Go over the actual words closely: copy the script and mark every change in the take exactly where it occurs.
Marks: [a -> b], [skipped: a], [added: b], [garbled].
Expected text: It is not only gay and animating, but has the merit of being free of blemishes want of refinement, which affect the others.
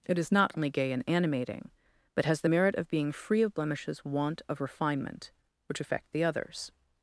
It is not only gay and animating, but has the merit of being free of blemishes want of refinement, which affect the others.